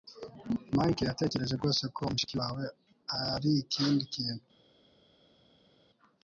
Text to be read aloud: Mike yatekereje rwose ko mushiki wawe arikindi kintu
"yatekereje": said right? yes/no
yes